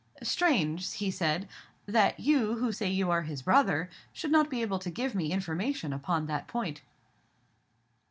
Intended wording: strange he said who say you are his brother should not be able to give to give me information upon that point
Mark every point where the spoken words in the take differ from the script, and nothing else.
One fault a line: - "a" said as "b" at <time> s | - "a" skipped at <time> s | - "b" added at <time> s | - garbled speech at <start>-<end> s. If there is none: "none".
- "that you" added at 1.9 s
- "to give" skipped at 5.1 s